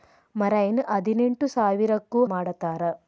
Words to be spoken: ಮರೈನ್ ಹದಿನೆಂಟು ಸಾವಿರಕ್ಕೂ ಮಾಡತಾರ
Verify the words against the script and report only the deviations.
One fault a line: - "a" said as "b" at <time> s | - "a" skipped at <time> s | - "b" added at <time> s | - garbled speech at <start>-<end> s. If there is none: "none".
none